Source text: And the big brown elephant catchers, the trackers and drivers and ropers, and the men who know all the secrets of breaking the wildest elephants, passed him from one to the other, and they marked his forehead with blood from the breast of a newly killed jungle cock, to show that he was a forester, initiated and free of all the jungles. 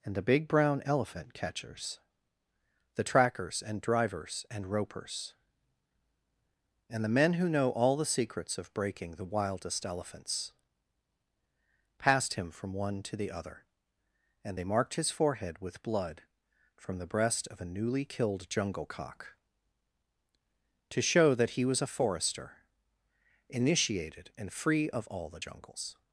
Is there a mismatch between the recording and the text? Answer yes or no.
no